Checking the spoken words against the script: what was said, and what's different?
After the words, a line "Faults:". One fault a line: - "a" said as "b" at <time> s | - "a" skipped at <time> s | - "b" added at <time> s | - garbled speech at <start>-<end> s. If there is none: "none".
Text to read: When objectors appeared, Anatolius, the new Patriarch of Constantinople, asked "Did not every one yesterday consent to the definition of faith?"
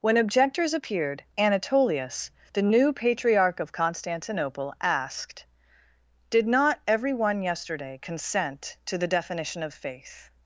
When objectors appeared, Anatolius, the new Patriarch of Constantinople, asked "Did not every one yesterday consent to the definition of faith?"
Faults:
none